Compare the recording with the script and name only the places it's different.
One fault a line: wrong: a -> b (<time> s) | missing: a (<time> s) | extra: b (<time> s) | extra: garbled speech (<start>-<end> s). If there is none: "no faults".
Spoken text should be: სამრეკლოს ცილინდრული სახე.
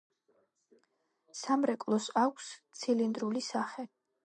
extra: აქვს (2.2 s)